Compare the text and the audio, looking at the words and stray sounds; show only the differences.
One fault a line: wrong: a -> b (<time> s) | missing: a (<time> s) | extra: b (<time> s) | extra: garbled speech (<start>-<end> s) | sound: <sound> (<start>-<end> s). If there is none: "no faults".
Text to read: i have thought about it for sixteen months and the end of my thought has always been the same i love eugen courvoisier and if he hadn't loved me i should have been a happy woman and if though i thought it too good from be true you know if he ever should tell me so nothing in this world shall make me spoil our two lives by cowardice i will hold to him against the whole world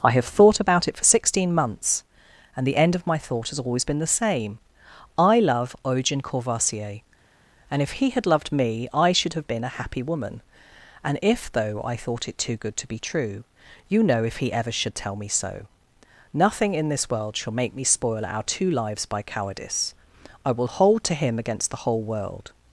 wrong: hadn't -> had (8.1 s)
wrong: from -> to (12.8 s)